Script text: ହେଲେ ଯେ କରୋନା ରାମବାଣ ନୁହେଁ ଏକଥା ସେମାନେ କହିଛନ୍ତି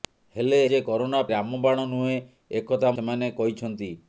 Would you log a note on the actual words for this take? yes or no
no